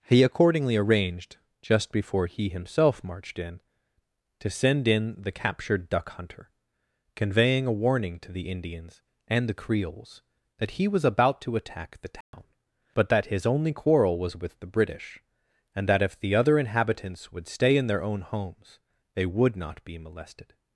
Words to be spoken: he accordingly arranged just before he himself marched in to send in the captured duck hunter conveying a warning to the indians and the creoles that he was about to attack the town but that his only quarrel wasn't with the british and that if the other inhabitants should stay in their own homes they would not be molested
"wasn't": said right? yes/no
no